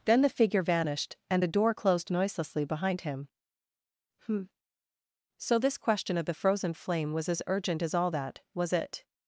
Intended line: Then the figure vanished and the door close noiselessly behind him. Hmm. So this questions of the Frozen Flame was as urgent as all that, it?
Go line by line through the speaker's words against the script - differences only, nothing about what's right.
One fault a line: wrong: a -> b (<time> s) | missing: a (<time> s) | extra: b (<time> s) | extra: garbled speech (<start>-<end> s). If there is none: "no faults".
wrong: close -> closed (1.7 s)
wrong: questions -> question (5.8 s)
extra: was (8.5 s)